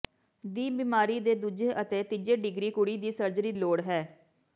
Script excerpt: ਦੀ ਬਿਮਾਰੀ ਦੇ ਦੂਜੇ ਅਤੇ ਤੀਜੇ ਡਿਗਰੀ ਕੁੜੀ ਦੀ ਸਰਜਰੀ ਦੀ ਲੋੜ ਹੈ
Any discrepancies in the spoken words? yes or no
yes